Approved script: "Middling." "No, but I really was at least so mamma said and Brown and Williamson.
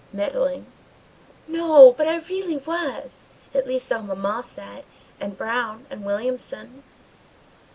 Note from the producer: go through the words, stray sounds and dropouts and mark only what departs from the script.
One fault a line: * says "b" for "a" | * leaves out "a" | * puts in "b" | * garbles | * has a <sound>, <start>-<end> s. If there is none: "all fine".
all fine